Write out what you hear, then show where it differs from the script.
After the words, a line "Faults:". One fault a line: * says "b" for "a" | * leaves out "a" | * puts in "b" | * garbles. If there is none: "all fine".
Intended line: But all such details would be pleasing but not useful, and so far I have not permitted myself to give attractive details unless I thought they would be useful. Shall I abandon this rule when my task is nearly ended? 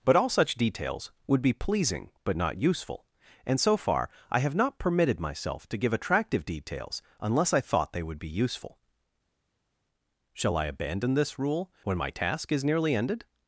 But all such details would be pleasing but not useful, and so far I have not permitted myself to give attractive details unless I thought they would be useful. Shall I abandon this rule when my task is nearly ended?
Faults:
all fine